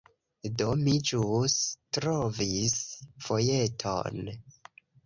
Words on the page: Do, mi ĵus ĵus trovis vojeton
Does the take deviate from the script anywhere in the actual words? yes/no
yes